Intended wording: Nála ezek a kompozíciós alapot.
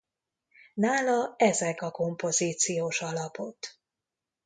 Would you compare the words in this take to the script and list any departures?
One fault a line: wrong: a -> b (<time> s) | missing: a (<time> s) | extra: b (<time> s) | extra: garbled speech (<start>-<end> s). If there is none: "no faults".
no faults